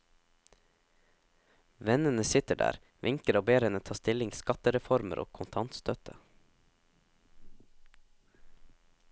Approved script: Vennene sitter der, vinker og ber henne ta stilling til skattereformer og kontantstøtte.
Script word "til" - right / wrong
wrong